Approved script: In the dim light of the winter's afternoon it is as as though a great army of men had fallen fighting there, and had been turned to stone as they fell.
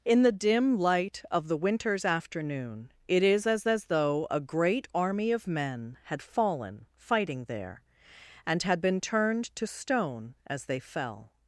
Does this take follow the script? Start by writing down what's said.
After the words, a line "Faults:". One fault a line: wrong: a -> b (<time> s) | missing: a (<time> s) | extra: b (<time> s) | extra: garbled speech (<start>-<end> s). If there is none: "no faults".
In the dim light of the winter's afternoon it is as as though a great army of men had fallen fighting there, and had been turned to stone as they fell.
Faults:
no faults